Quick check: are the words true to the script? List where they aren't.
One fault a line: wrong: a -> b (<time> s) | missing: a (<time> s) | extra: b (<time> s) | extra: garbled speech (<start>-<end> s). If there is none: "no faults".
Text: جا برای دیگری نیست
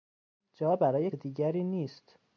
no faults